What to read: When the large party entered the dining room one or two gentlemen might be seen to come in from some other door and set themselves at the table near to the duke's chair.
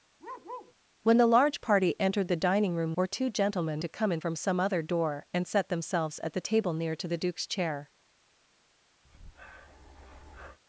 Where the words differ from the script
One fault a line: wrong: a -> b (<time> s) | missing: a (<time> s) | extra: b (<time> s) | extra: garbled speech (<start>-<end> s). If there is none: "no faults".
missing: one (2.9 s)
missing: might be seen (3.8 s)